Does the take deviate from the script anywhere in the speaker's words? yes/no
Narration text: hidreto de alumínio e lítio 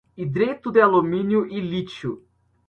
no